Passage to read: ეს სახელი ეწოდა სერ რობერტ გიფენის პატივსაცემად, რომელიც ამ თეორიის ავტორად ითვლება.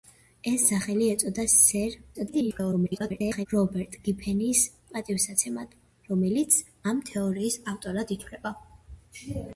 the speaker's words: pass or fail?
fail